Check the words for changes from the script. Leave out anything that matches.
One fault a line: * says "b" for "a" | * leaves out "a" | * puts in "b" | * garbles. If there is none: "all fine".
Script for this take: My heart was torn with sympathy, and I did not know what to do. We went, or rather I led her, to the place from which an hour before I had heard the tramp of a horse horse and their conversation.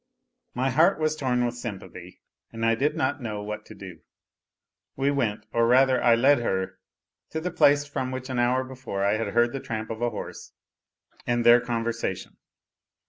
* leaves out "horse"